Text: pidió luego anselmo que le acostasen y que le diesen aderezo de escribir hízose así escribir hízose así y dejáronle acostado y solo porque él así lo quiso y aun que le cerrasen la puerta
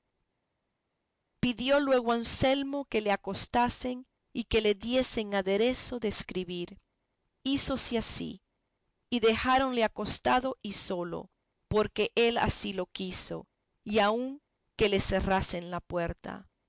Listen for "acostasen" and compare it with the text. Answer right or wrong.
right